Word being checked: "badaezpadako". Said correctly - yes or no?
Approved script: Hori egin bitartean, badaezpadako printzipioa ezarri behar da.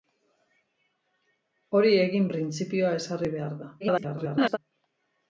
no